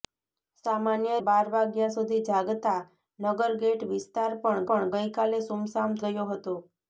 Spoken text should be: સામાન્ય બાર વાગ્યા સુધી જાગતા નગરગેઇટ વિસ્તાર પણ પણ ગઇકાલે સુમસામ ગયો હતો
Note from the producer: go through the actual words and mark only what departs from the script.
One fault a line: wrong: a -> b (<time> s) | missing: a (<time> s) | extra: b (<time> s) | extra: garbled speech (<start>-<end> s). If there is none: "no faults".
no faults